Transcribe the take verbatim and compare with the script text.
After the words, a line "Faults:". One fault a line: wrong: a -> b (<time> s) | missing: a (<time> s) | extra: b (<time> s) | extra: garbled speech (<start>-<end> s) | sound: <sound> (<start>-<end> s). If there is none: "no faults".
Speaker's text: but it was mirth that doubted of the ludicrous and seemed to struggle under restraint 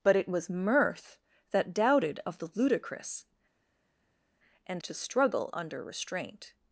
but it was mirth that doubted of the ludicrous and to struggle under restraint
Faults:
missing: seemed (4.8 s)